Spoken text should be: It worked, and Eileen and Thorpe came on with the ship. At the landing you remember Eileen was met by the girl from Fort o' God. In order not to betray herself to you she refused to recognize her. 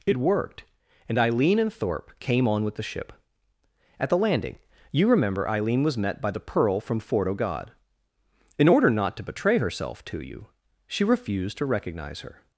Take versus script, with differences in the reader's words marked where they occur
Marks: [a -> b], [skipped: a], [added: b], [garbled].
It worked, and Eileen and Thorpe came on with the ship. At the landing you remember Eileen was met by the [girl -> pearl] from Fort o' God. In order not to betray herself to you she refused to recognize her.